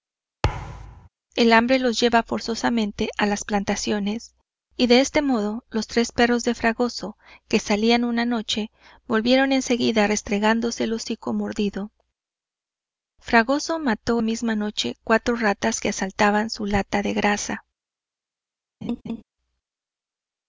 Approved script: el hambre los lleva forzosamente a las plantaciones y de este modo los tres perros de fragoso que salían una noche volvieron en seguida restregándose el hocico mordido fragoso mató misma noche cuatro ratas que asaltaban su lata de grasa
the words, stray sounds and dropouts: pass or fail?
fail